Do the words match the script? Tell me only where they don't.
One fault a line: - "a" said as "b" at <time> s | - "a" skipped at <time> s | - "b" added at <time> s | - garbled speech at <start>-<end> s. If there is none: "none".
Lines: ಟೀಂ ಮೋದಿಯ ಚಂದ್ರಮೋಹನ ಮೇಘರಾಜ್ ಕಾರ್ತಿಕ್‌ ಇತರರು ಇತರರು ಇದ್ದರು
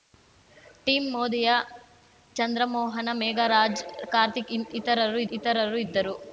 none